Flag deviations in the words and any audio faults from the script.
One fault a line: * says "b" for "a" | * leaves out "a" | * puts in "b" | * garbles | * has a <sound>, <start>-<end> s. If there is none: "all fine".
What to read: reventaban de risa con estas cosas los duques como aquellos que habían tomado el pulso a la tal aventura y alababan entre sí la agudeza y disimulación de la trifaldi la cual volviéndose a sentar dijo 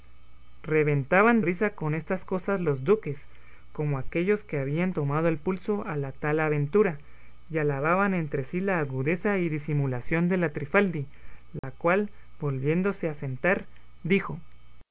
* leaves out "de"
* has a dropout, 11.6-11.6 s